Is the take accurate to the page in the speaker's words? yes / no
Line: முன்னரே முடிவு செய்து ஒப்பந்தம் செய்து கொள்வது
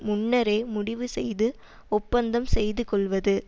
yes